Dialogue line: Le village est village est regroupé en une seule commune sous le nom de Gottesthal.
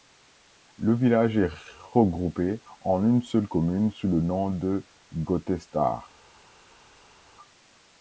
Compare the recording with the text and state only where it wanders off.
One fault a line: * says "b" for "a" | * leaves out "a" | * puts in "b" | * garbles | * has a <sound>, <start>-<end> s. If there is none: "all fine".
* leaves out "village est"